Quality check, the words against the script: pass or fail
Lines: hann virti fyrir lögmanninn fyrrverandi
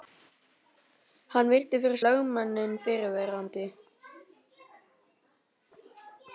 pass